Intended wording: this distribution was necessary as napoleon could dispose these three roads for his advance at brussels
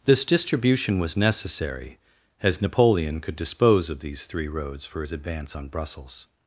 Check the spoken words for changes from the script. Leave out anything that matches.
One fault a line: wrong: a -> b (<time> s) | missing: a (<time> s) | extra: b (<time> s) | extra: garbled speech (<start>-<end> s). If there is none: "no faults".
extra: of (3.9 s)
wrong: at -> on (5.6 s)